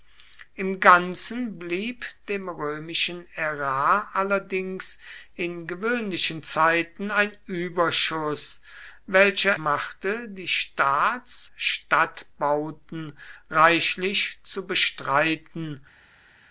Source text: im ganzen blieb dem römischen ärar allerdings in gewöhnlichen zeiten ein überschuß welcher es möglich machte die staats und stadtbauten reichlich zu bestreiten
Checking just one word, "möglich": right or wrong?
wrong